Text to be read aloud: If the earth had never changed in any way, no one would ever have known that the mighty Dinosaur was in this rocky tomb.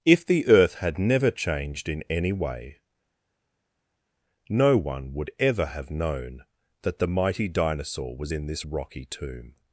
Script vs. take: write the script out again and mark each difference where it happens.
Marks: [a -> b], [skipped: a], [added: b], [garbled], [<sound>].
If the earth had never changed in any way, no one would ever have known that the mighty Dinosaur was in this rocky tomb.